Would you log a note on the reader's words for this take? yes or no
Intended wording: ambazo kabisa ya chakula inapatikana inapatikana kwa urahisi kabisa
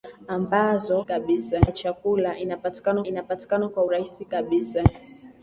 no